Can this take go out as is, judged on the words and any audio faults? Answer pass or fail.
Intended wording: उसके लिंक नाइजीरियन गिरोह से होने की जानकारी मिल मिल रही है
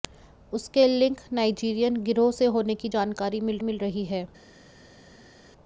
pass